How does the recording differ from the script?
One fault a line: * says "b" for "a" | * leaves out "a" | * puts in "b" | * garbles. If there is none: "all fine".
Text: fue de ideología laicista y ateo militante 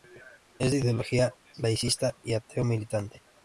* says "es" for "fue"